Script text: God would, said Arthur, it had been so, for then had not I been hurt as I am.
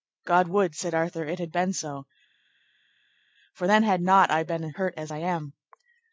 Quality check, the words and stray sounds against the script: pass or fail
pass